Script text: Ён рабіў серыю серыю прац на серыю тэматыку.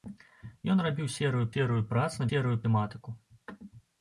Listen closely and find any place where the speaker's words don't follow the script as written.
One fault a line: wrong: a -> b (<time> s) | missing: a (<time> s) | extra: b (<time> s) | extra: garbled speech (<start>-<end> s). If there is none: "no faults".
no faults